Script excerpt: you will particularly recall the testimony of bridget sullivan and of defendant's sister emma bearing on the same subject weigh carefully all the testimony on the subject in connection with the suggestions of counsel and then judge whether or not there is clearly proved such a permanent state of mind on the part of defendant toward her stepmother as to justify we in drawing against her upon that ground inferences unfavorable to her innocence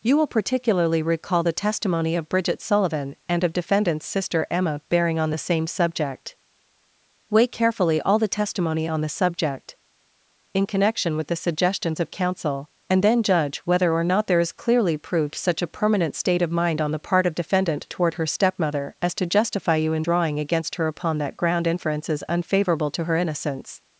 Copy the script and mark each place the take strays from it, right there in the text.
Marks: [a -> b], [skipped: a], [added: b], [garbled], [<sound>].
you will particularly recall the testimony of bridget sullivan and of defendant's sister emma bearing on the same subject weigh carefully all the testimony on the subject in connection with the suggestions of counsel and then judge whether or not there is clearly proved such a permanent state of mind on the part of defendant toward her stepmother as to justify [we -> you] in drawing against her upon that ground inferences unfavorable to her innocence